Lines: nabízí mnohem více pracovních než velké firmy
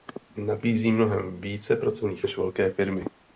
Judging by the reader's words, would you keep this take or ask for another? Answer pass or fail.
pass